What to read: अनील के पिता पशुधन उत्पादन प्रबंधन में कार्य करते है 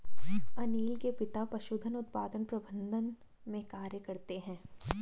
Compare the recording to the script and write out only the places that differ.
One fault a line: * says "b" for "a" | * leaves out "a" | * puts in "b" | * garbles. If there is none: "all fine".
all fine